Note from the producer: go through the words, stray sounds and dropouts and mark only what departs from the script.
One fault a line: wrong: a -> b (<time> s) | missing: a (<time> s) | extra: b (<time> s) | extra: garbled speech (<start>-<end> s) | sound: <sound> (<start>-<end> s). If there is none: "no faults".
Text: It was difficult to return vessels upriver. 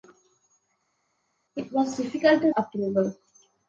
missing: return vessels (2.5 s)